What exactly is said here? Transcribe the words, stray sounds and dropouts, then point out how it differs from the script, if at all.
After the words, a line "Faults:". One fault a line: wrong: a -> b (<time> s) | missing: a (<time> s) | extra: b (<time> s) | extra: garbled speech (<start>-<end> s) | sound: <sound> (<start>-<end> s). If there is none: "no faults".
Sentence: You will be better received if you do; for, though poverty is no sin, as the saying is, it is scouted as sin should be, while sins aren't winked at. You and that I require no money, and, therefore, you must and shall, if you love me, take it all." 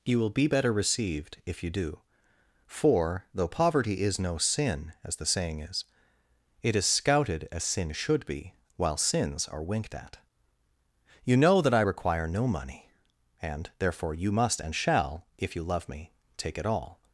You will be better received if you do; for, though poverty is no sin, as the saying is, it is scouted as sin should be, while sins are winked at. You know that I require no money, and, therefore, you must and shall, if you love me, take it all."
Faults:
wrong: aren't -> are (9.5 s)
wrong: and -> know (11.4 s)